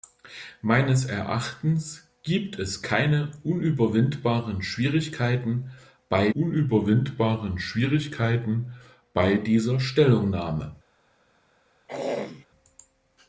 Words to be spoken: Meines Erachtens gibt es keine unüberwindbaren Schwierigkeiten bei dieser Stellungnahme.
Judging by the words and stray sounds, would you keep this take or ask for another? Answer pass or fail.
fail